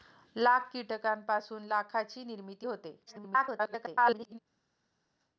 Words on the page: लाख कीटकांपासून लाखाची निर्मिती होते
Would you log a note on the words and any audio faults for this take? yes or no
yes